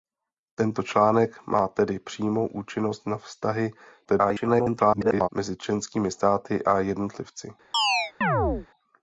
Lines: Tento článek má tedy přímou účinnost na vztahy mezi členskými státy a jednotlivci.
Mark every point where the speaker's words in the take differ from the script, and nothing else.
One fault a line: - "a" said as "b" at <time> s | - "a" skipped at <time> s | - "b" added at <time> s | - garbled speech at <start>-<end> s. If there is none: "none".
- garbled speech at 4.0-5.3 s